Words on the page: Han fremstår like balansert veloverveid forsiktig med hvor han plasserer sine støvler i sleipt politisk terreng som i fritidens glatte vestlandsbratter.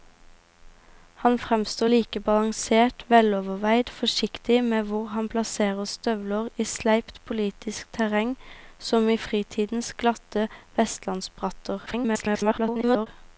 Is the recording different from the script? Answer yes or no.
yes